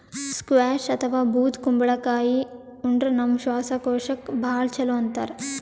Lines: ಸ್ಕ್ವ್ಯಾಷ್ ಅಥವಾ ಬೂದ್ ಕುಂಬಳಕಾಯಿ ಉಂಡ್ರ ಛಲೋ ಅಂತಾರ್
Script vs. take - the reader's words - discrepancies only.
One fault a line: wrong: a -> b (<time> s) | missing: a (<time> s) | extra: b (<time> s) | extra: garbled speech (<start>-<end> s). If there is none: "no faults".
extra: ನಮ್ ಶ್ವಾಸಕೋಶಕ್ಕ್ ಭಾಳ್ (3.1 s)